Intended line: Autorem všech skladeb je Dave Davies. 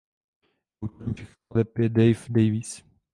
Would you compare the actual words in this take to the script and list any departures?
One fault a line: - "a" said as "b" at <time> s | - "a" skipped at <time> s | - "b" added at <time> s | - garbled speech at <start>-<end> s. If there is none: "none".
none